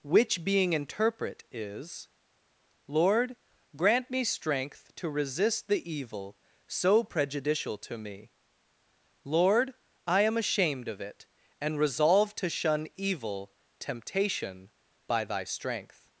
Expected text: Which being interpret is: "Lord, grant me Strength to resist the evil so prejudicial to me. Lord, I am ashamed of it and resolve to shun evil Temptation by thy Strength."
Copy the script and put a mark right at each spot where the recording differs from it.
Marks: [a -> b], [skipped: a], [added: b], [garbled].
Which being interpret is: "Lord, grant me Strength to resist the evil so prejudicial to me. Lord, I am ashamed of it and resolve to shun evil Temptation by thy Strength."